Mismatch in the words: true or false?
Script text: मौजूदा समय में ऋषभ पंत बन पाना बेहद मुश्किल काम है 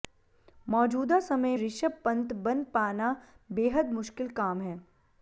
true